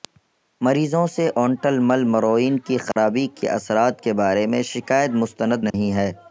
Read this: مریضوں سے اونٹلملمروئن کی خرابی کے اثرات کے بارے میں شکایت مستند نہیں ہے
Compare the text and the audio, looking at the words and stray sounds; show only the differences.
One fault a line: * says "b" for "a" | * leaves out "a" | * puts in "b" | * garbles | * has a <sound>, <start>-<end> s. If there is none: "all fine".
* has a dropout, 2.9-3.0 s
* has a dropout, 5.7-5.7 s